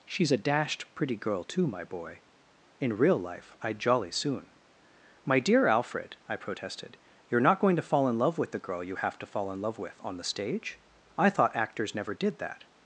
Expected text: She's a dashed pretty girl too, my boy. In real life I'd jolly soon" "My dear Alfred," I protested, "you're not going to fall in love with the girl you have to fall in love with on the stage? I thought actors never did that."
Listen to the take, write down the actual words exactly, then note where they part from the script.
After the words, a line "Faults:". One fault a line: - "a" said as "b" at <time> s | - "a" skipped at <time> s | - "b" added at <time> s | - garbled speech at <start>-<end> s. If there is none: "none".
She's a dashed pretty girl too, my boy. In real life I'd jolly soon" "My dear Alfred," I protested, "you're not going to fall in love with the girl you have to fall in love with on the stage? I thought actors never did that."
Faults:
none